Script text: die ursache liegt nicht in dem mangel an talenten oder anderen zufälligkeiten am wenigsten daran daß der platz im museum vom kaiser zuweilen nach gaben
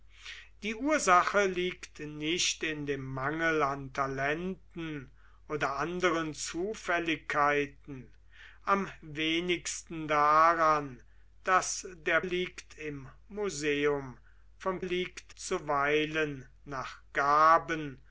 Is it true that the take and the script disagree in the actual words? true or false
true